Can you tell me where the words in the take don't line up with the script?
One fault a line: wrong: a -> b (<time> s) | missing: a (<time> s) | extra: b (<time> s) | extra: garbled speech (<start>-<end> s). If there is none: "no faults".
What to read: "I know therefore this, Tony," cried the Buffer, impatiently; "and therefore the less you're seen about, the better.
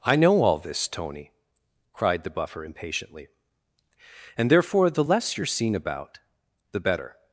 wrong: therefore -> all (0.4 s)